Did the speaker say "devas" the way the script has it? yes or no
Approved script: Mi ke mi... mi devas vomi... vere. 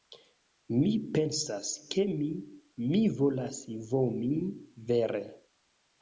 no